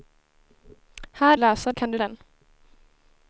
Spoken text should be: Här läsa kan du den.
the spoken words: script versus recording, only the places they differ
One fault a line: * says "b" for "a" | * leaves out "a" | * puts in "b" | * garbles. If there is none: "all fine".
all fine